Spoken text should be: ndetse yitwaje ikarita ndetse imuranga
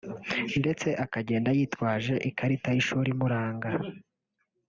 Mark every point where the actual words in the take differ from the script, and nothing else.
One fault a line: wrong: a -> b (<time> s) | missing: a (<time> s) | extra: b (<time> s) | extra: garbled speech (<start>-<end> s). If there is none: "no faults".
extra: akagenda (1.1 s)
wrong: ndetse -> y'ishuri (2.8 s)